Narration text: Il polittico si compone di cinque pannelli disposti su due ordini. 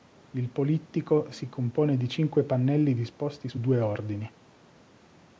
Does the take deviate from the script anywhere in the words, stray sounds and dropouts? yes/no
no